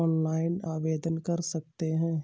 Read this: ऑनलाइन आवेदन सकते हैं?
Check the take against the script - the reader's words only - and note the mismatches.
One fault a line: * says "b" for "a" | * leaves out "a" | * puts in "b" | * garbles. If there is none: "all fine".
* puts in "कर"